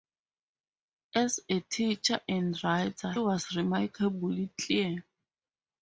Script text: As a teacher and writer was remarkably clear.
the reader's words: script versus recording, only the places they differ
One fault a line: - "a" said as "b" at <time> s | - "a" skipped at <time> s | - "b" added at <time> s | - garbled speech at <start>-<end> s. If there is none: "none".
none